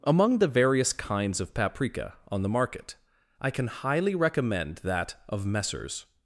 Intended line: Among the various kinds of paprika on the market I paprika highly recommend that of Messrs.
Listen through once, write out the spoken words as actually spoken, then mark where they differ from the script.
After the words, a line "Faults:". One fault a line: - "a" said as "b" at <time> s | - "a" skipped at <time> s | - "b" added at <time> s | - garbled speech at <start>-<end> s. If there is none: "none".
Among the various kinds of paprika on the market I can highly recommend that of Messrs.
Faults:
- "paprika" said as "can" at 3.5 s